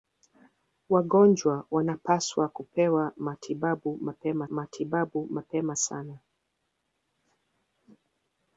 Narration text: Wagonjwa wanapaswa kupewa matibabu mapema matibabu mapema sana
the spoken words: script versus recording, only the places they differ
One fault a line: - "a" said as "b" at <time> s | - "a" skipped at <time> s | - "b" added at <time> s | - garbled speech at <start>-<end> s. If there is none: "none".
none